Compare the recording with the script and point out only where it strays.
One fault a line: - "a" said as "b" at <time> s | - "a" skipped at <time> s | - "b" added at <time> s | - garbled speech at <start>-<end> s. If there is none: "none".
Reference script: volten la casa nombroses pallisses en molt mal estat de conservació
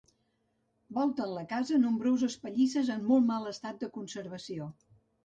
none